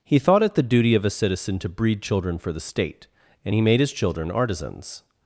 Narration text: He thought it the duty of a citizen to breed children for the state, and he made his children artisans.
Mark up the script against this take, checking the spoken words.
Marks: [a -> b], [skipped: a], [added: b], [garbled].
He thought it the duty of a citizen to breed children for the state, and he made his children artisans.